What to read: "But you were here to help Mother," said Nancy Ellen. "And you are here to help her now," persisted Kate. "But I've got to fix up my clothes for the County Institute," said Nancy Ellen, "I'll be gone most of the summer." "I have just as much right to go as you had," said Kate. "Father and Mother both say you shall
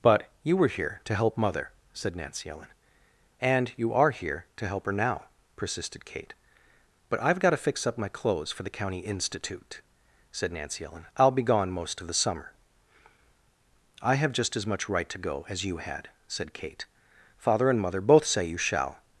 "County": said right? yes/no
yes